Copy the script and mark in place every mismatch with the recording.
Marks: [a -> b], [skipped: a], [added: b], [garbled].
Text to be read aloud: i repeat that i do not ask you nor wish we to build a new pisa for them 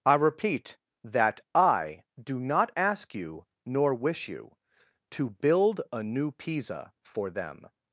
i repeat that i do not ask you nor wish [we -> you] to build a new pisa for them